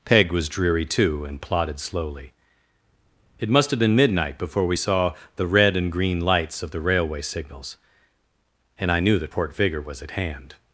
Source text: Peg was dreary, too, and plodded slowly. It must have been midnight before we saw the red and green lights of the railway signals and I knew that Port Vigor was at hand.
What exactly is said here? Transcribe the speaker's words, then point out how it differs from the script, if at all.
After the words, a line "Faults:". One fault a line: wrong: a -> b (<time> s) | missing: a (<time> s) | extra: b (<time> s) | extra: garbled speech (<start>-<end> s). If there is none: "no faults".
Peg was dreary, too, and plodded slowly. It must have been midnight before we saw the red and green lights of the railway signals and I knew that Port Vigor was at hand.
Faults:
no faults